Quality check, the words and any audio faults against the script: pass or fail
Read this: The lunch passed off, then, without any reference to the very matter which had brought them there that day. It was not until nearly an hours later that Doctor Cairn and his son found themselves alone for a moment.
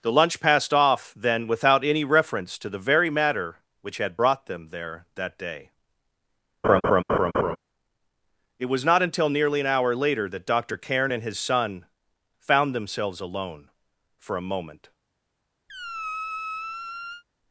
fail